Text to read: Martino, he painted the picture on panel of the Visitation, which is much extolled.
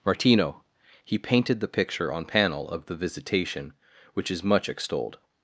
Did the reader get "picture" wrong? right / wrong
right